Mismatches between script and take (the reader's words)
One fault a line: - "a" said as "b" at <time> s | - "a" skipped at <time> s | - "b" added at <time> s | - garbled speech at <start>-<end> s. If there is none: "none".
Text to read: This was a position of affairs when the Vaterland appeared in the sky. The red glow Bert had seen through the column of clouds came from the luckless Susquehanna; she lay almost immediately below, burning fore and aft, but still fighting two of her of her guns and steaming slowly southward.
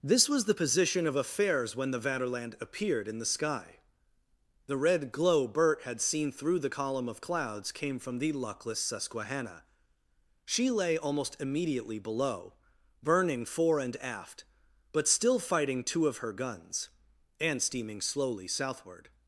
- "a" said as "the" at 0.5 s
- "of her" skipped at 16.3 s